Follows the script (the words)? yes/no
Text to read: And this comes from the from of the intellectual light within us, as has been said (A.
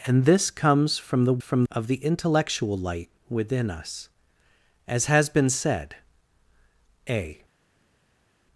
yes